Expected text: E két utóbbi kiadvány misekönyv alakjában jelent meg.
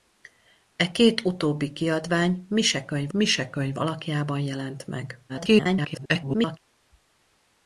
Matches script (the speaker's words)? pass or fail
fail